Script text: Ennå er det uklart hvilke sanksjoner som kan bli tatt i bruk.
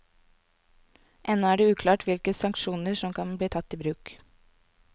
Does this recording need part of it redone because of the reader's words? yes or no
no